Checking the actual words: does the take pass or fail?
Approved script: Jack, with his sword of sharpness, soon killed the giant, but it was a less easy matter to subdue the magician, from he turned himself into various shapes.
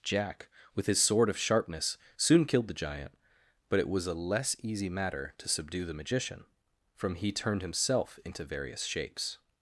pass